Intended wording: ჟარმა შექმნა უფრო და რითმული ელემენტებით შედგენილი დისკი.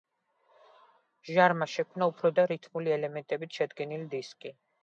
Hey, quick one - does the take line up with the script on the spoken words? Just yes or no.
yes